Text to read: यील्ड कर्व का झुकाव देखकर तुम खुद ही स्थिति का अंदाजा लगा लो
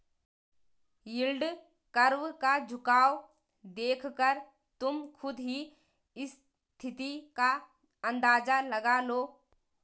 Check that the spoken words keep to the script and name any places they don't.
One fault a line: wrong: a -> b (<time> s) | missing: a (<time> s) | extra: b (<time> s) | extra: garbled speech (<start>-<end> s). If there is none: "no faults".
no faults